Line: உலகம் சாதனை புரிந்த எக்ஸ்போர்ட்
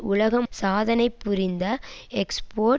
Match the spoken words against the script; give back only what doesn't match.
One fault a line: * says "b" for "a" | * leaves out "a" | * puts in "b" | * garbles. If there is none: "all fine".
all fine